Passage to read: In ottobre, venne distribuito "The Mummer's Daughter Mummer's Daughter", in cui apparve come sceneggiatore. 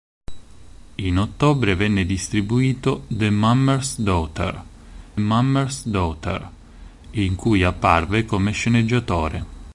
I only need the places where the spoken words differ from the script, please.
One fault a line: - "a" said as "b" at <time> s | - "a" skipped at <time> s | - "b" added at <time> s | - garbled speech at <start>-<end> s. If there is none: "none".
none